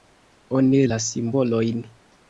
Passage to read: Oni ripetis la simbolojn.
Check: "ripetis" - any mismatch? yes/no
yes